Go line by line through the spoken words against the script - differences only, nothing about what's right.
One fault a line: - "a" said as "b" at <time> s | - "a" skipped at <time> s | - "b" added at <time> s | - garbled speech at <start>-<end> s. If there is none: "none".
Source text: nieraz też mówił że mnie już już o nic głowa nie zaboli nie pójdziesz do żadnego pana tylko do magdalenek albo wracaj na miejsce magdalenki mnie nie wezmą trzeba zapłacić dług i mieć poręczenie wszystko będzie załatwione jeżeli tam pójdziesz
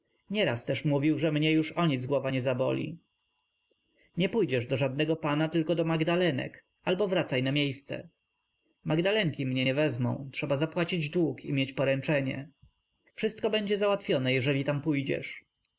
- "już" skipped at 1.7 s